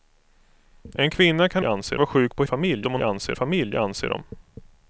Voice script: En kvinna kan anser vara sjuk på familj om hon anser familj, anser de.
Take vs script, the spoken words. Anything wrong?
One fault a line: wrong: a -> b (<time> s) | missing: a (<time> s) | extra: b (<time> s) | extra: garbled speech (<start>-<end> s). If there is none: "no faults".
no faults